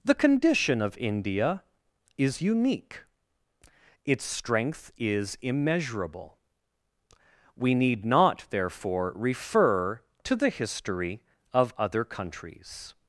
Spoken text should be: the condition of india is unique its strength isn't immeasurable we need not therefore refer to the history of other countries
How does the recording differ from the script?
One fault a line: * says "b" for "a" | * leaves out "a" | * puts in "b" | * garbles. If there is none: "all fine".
* says "is" for "isn't"